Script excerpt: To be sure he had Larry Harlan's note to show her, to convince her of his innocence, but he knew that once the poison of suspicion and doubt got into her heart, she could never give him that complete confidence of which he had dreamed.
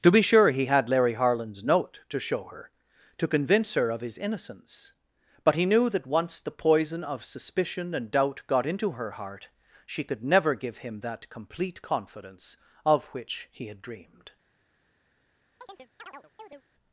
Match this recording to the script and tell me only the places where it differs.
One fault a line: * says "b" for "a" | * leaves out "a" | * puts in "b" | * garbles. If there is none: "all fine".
all fine